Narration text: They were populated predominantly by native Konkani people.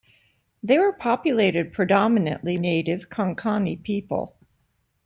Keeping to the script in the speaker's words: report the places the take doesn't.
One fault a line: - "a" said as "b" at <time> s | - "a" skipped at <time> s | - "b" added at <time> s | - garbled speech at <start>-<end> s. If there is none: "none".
- "by" skipped at 2.6 s